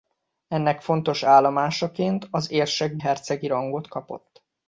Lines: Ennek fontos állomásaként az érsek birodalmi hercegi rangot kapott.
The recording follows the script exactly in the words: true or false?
false